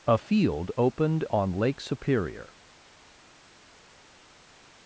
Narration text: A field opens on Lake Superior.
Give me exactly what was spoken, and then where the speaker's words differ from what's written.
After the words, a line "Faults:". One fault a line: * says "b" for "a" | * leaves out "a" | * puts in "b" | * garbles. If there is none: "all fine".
A field opened on Lake Superior.
Faults:
* says "opened" for "opens"